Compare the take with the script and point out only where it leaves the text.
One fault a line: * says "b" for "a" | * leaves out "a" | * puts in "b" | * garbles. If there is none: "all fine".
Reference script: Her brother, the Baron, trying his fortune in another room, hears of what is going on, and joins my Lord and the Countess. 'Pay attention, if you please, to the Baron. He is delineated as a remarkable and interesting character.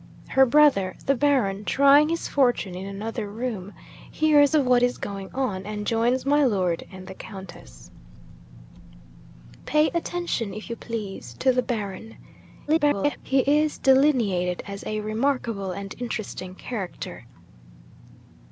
* garbles